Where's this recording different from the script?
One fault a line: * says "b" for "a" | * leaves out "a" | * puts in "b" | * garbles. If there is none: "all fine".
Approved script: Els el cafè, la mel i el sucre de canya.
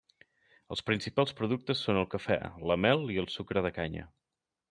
* puts in "principals productes són"